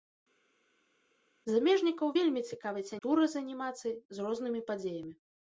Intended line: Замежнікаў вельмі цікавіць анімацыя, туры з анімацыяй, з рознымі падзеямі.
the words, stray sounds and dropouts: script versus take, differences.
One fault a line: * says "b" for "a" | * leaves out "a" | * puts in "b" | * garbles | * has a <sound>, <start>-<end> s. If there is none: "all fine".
* leaves out "анімацыя"